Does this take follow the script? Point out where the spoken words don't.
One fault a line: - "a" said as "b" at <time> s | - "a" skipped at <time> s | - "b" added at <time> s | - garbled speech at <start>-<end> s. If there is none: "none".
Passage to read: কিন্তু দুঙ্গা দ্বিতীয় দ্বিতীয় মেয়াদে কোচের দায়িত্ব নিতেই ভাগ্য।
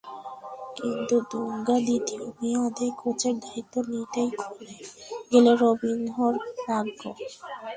- "দ্বিতীয়" skipped at 2.2 s
- "খুলে গেল রবিনহোর" added at 4.4 s